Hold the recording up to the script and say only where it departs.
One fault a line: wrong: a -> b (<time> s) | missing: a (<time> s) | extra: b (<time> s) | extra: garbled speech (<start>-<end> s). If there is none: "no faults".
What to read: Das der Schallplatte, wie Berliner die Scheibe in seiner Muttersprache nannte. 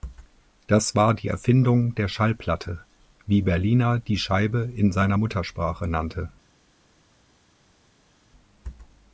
extra: war die Erfindung (0.9 s)